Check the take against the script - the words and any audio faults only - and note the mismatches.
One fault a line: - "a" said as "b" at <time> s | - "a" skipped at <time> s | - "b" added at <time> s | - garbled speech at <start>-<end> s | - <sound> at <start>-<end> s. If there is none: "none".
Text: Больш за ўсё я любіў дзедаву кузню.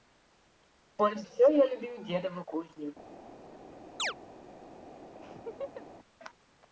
- "за" skipped at 1.2 s
- chirp at 4.0-4.1 s
- laugh at 5.2-5.9 s